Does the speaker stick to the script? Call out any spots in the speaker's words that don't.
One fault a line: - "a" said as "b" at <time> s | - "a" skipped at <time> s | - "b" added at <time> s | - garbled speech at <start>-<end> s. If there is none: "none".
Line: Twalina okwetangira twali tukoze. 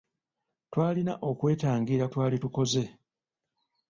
none